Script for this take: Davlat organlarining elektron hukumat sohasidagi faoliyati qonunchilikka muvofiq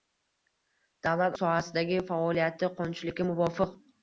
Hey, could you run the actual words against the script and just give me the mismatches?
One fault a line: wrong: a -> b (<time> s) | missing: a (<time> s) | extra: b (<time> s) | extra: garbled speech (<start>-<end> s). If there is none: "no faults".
missing: organlarining elektron hukumat (1.4 s)